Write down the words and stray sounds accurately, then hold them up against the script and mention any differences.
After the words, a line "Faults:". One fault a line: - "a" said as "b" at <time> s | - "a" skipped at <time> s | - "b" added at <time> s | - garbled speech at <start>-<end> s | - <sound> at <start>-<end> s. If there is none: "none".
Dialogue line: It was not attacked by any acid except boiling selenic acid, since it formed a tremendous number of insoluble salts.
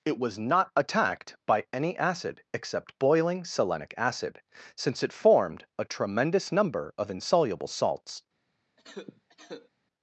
It was not attacked by any acid except boiling selenic acid, since it formed a tremendous number of insoluble salts.
Faults:
- cough at 8.8-9.7 s